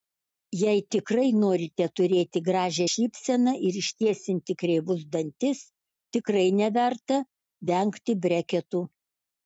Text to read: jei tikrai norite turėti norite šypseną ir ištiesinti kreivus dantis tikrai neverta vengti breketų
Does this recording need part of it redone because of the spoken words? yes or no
yes